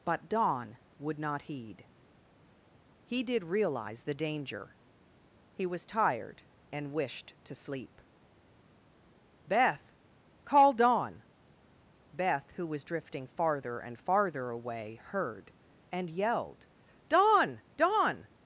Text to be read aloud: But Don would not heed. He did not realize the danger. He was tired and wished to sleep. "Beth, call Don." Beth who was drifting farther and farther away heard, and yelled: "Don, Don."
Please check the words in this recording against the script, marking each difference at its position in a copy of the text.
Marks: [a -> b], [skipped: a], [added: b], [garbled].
But Don would not heed. He did [skipped: not] realize the danger. He was tired and wished to sleep. "Beth, call Don." Beth who was drifting farther and farther away heard, and yelled: "Don, Don."